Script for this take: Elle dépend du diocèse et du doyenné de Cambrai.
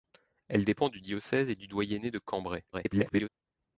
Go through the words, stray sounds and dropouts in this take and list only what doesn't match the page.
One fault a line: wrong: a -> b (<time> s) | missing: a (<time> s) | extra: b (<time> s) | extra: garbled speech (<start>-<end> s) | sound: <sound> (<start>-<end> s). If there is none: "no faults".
extra: garbled speech (2.7-3.3 s)